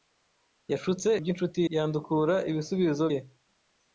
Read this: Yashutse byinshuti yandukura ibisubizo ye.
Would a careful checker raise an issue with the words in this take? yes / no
no